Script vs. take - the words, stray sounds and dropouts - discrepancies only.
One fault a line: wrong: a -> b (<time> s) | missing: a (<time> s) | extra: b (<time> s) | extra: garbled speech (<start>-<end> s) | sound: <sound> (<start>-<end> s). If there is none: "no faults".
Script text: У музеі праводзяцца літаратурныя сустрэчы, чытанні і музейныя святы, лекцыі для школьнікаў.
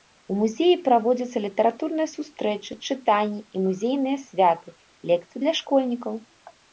no faults